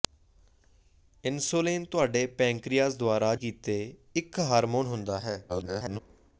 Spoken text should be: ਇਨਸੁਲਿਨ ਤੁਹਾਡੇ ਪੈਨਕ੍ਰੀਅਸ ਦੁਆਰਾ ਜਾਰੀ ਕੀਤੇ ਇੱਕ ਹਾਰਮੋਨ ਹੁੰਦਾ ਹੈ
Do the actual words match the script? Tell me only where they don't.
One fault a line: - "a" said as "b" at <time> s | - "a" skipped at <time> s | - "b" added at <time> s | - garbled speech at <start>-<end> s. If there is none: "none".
- "ਜਾਰੀ" skipped at 3.3 s
- garbled speech at 5.5-6.0 s